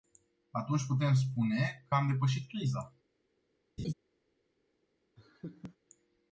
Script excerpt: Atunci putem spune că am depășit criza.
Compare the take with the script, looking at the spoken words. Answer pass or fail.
pass